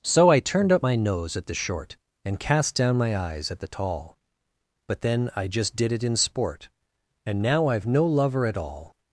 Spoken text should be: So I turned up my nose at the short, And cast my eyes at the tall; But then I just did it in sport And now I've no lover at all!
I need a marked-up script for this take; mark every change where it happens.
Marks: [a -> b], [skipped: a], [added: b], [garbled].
So I turned up my nose at the short, And cast [added: down] my eyes at the tall; But then I just did it in sport And now I've no lover at all!